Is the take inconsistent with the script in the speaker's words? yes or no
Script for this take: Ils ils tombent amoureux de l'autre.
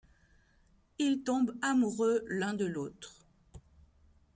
yes